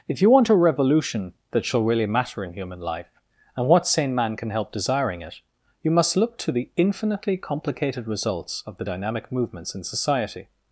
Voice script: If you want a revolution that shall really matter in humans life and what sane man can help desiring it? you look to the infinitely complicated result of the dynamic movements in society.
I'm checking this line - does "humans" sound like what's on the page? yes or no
no